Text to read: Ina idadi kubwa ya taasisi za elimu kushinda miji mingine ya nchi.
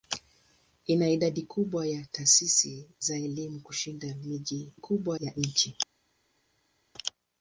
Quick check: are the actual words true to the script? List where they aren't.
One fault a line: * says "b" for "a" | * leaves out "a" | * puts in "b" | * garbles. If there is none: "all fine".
* says "kubwa" for "mingine"